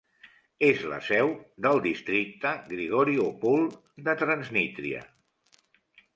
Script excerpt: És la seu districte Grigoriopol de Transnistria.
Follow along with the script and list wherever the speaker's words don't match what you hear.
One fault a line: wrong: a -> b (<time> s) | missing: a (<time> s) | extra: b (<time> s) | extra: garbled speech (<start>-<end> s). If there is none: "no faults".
extra: del (1.6 s)